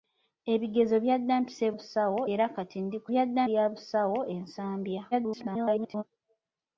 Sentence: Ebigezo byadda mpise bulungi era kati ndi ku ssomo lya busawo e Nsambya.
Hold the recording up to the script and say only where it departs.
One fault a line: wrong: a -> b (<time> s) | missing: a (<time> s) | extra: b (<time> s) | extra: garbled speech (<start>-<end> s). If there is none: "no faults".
wrong: bulungi -> busawo (1.7 s)
wrong: ssomo -> byadda (3.1 s)
extra: garbled speech (5.1-6.0 s)